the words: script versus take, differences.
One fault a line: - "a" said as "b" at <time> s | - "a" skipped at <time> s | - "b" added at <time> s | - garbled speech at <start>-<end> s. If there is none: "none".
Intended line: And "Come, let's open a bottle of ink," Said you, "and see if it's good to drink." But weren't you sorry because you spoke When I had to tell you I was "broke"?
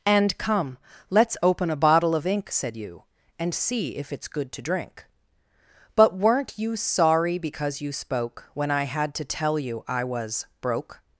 none